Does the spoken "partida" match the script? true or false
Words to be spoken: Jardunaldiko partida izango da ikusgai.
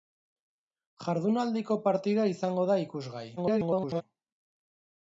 true